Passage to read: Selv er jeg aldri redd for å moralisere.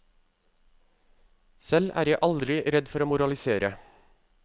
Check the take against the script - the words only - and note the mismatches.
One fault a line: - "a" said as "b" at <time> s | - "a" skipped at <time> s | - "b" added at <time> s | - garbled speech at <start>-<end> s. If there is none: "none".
none